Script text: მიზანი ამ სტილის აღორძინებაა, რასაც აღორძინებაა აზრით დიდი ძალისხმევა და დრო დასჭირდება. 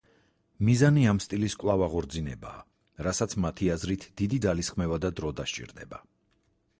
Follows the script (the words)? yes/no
no